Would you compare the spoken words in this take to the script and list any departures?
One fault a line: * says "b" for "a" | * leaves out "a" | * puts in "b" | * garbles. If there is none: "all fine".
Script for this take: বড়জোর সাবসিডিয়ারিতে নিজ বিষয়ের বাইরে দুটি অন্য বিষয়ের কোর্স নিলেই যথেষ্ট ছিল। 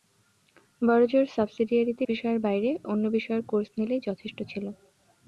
* leaves out "নিজ"
* leaves out "দুটি"